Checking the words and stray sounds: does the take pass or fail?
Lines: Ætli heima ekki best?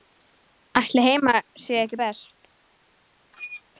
fail